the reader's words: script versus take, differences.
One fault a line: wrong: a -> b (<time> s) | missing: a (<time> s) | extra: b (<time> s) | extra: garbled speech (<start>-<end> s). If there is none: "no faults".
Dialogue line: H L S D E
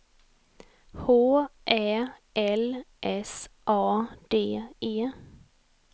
extra: Ä (1.7 s)
extra: A (3.7 s)